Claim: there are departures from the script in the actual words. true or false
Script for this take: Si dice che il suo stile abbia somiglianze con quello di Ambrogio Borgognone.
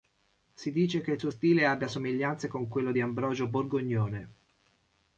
false